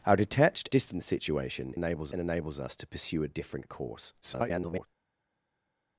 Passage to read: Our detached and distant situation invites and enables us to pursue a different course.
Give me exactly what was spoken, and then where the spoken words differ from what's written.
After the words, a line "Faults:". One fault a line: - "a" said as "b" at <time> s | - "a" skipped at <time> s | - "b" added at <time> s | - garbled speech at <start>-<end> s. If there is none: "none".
Our detached distant situation enables and enables us to pursue a different course. [garbled]
Faults:
- "and" skipped at 0.7 s
- "invites" said as "enables" at 1.7 s
- garbled speech at 4.2-4.9 s